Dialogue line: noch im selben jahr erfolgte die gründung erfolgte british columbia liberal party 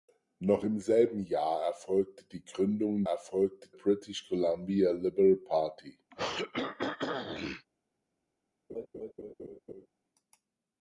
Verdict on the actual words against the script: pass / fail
pass